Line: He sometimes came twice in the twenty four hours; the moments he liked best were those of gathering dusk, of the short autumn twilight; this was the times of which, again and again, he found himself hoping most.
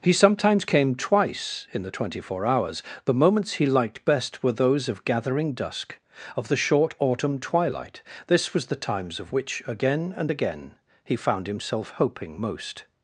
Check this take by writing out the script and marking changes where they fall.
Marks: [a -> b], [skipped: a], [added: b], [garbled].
He sometimes came twice in the twenty four hours; the moments he liked best were those of gathering dusk, of the short autumn twilight; this was the times of which, again and again, he found himself hoping most.